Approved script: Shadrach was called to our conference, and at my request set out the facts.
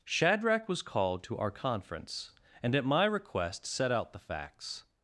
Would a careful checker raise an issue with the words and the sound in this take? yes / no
no